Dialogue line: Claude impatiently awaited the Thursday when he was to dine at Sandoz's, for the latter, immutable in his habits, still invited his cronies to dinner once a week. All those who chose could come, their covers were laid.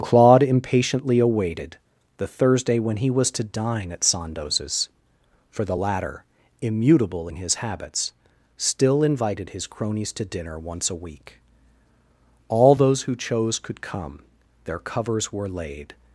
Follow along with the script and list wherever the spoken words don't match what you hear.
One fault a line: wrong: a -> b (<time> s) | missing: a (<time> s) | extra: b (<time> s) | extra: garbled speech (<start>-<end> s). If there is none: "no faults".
no faults